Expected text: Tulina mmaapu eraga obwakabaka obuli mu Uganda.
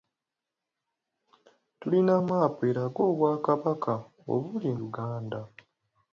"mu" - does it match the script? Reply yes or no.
no